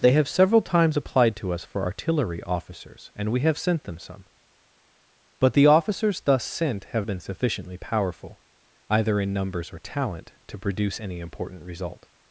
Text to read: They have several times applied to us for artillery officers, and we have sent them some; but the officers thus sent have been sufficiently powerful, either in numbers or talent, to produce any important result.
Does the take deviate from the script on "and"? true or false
false